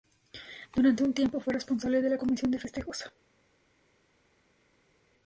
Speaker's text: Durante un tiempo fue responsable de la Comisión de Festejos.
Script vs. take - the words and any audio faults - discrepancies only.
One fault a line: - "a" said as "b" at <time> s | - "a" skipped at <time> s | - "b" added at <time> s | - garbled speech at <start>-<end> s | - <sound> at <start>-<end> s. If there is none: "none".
none